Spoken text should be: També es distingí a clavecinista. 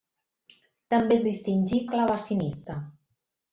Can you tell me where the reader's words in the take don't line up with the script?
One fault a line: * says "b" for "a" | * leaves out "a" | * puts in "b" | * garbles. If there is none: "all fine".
all fine